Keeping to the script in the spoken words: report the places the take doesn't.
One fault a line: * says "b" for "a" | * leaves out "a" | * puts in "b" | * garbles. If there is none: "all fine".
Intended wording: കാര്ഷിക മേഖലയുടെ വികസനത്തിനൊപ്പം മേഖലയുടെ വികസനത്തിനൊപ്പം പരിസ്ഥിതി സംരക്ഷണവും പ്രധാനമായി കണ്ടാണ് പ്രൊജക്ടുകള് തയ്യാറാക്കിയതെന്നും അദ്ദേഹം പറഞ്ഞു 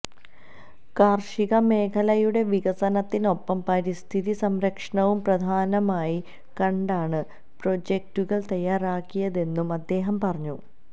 * leaves out "മേഖലയുടെ വികസനത്തിനൊപ്പം"